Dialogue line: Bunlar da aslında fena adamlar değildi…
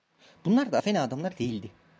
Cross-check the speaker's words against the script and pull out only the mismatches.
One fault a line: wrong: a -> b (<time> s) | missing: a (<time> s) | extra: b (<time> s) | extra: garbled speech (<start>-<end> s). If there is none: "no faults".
missing: aslında (0.8 s)